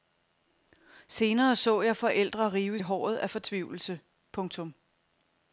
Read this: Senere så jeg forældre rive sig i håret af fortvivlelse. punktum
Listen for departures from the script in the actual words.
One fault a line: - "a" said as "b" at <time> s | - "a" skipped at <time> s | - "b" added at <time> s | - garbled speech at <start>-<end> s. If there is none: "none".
- "sig" skipped at 2.8 s